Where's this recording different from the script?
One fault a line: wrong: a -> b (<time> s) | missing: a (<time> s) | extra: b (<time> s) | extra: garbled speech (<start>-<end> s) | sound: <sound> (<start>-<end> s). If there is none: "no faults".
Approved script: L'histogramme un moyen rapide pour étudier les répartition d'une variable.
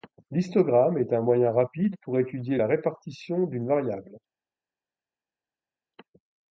extra: est (1.0 s)
wrong: les -> la (2.6 s)